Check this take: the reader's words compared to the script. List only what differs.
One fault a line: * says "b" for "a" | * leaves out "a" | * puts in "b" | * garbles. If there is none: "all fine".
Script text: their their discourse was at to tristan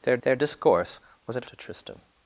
all fine